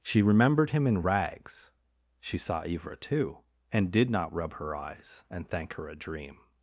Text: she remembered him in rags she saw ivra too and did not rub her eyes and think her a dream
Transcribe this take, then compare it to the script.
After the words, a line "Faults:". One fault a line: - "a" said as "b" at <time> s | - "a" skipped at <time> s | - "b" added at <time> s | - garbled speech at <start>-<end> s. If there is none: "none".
she remembered him in rags she saw ivra too and did not rub her eyes and thank her a dream
Faults:
- "think" said as "thank" at 5.5 s